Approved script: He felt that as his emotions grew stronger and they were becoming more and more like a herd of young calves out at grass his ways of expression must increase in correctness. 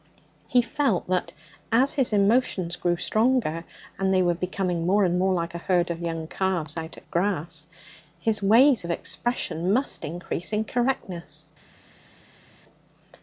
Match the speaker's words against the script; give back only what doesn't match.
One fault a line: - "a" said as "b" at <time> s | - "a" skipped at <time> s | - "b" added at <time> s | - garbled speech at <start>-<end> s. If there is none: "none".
none